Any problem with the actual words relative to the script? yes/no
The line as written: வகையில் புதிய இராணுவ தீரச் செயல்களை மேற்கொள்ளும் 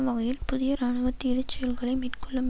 no